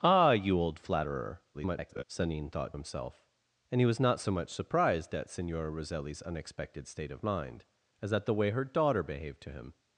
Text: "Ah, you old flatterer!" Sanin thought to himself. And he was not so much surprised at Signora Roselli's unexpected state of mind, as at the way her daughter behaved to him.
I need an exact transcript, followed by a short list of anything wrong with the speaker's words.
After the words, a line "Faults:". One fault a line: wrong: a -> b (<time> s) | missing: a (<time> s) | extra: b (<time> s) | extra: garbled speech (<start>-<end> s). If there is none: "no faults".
"Ah, you old flatterer!" [garbled] Sanin thought himself. And he was not so much surprised at Signora Roselli's unexpected state of mind, as at the way her daughter behaved to him.
Faults:
extra: garbled speech (1.5-2.0 s)
missing: to (2.8 s)